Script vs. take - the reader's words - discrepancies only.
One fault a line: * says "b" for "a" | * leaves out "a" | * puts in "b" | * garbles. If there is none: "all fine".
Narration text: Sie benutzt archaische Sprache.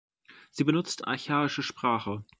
all fine